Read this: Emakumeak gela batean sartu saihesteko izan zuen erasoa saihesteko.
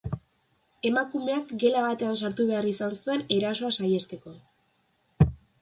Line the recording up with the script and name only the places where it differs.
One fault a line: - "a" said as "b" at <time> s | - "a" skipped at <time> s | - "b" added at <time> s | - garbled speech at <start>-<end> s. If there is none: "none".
- "saihesteko" said as "behar" at 2.5 s